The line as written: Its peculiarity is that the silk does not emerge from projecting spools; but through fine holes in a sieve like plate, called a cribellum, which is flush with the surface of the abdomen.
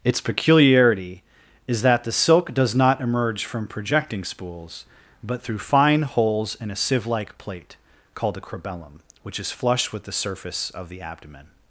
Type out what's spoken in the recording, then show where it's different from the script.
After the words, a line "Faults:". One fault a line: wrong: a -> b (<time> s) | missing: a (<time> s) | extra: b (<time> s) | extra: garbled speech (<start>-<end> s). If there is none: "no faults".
Its peculiarity is that the silk does not emerge from projecting spools; but through fine holes in a sieve like plate, called a cribellum, which is flush with the surface of the abdomen.
Faults:
no faults